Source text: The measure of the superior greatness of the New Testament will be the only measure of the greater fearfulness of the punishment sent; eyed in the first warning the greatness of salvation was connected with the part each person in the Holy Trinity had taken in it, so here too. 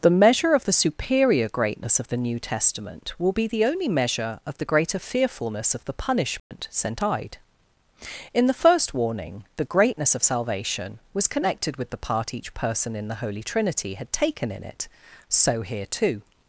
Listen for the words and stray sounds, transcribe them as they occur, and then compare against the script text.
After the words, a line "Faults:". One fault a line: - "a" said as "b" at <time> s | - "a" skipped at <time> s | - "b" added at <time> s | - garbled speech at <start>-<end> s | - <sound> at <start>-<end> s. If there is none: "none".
The measure of the superior greatness of the New Testament will be the only measure of the greater fearfulness of the punishment sent; eyed in the first warning the greatness of salvation was connected with the part each person in the Holy Trinity had taken in it, so here too.
Faults:
- dropout at 6.4-6.5 s